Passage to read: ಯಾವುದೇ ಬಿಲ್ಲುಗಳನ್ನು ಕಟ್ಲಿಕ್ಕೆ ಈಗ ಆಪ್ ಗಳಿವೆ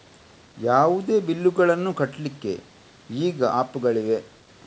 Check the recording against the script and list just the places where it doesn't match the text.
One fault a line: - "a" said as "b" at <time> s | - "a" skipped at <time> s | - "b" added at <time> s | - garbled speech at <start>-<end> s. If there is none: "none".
none